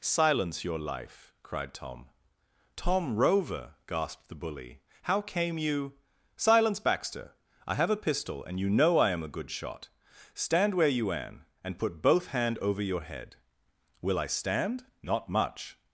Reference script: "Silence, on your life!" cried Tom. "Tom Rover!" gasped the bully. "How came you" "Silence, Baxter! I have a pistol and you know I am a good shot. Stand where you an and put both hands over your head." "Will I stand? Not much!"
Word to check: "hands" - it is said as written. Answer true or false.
false